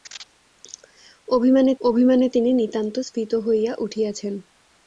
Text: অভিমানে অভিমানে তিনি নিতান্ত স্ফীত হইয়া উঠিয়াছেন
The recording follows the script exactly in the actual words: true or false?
true